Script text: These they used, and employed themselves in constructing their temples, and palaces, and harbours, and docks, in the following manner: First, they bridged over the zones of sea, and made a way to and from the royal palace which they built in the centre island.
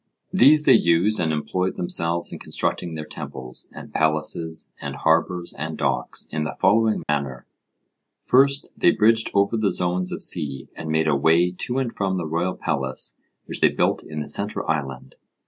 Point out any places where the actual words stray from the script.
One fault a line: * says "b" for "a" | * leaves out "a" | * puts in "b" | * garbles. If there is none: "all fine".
all fine